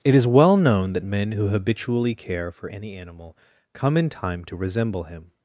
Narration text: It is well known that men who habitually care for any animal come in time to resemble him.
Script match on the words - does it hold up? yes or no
yes